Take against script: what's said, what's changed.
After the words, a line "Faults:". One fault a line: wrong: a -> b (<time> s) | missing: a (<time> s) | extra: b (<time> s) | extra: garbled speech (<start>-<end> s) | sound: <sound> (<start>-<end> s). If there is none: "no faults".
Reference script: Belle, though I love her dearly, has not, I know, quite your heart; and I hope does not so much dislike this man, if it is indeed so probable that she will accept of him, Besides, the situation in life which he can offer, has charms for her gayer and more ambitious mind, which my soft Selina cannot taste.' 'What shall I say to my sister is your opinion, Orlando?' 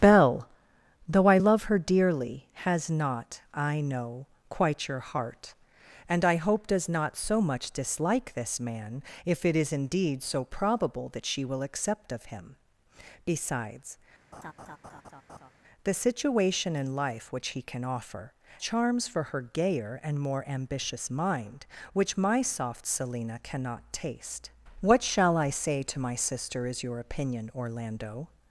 Belle, though I love her dearly, has not, I know, quite your heart; and I hope does not so much dislike this man, if it is indeed so probable that she will accept of him, Besides, the situation in life which he can offer, charms for her gayer and more ambitious mind, which my soft Selina cannot taste.' 'What shall I say to my sister is your opinion, Orlando?'
Faults:
sound: laugh (14.3-15.5 s)
missing: has (18.3 s)